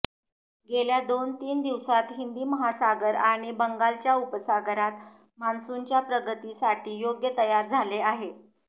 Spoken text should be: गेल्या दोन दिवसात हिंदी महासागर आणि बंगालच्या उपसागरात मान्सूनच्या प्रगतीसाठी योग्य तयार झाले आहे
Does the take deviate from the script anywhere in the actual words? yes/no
yes